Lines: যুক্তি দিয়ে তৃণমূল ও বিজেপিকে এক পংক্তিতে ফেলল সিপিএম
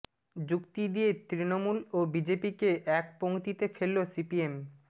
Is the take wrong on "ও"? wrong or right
right